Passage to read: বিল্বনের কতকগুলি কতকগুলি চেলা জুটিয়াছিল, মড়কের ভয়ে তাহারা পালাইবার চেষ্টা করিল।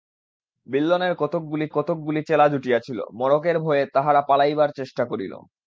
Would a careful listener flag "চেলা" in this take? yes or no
no